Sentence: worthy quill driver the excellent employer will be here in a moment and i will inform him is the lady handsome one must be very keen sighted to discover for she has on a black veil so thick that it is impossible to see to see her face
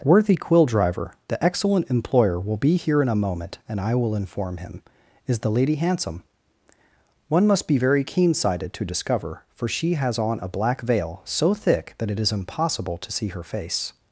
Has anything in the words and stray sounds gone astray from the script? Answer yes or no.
yes